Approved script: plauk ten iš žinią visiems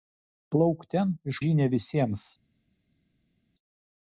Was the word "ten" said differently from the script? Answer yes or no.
no